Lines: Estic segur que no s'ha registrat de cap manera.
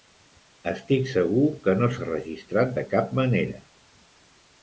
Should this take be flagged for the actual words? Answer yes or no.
no